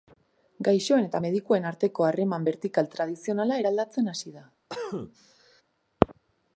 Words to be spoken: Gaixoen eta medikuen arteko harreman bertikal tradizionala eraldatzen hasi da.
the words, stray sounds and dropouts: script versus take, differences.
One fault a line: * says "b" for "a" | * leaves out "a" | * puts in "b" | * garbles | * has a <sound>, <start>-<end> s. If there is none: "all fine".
* has a cough, 4.7-5.6 s